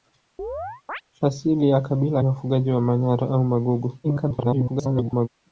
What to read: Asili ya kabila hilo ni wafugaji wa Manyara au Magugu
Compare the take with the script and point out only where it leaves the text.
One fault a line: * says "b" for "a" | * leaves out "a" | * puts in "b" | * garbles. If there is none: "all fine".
* leaves out "hilo ni"
* garbles